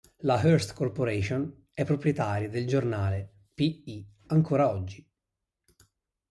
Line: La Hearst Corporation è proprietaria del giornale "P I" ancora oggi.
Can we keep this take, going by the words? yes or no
yes